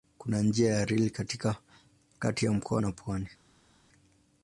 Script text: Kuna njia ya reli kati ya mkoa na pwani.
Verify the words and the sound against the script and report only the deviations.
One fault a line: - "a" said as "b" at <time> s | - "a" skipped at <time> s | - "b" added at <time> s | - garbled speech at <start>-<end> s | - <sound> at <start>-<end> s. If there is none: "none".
none